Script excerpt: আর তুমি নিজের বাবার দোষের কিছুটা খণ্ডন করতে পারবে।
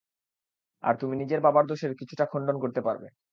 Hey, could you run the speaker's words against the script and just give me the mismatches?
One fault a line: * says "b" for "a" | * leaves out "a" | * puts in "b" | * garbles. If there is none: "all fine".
all fine